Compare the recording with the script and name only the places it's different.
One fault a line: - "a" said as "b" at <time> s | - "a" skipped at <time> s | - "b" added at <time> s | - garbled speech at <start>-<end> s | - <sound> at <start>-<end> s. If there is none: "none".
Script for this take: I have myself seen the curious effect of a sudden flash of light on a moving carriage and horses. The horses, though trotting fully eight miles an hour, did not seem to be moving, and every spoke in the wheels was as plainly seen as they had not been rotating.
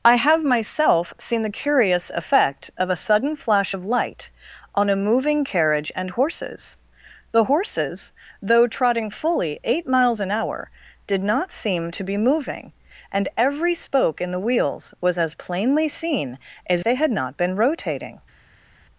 none